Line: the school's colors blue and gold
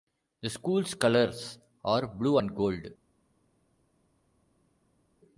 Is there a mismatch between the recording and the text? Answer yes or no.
yes